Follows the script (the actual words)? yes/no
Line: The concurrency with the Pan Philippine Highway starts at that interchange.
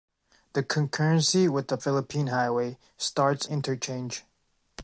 no